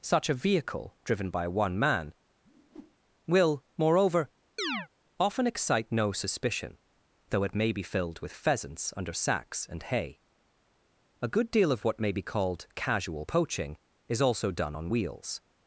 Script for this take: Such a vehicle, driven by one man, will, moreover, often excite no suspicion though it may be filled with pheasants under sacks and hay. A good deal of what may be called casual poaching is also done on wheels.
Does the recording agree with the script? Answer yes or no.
yes